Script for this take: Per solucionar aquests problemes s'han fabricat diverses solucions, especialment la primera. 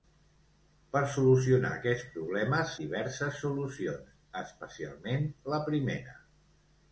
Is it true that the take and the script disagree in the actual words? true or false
true